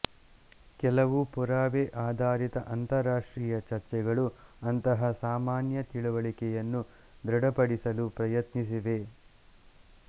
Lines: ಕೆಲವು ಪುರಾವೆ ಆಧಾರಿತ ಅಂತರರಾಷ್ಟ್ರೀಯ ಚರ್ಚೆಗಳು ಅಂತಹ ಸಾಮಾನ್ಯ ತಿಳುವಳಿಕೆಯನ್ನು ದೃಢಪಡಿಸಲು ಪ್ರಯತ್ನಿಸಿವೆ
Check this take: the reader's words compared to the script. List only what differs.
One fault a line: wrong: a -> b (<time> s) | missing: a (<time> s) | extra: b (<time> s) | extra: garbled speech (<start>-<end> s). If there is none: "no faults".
no faults